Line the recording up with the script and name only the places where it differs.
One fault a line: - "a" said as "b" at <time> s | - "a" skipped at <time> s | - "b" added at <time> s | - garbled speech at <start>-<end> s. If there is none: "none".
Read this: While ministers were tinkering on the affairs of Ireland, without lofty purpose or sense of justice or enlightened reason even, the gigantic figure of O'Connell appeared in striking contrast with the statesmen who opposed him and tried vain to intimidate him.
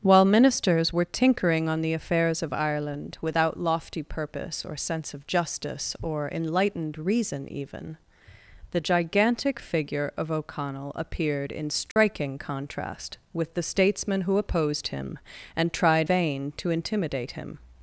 none